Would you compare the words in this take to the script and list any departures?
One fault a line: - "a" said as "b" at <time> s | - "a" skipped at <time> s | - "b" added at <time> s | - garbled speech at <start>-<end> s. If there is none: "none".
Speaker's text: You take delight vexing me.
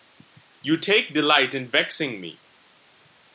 - "in" added at 1.5 s